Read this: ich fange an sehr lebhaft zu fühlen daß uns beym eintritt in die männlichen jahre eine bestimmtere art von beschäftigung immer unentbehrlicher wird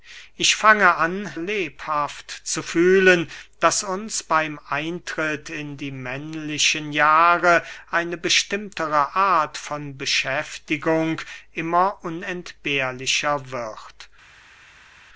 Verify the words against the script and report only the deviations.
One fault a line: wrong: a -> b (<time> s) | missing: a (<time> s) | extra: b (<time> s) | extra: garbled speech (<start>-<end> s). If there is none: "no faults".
missing: sehr (1.3 s)